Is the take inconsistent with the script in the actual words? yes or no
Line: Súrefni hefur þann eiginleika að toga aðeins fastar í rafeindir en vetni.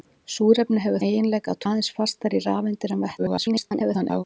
yes